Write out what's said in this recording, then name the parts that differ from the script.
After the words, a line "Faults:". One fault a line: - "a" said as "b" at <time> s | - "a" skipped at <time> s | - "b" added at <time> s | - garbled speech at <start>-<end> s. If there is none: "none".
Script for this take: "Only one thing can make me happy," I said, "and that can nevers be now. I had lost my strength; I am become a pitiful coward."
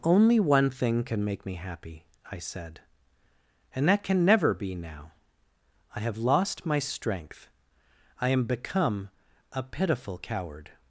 "Only one thing can make me happy," I said, "and that can never be now. I have lost my strength; I am become a pitiful coward."
Faults:
- "nevers" said as "never" at 4.2 s
- "had" said as "have" at 6.0 s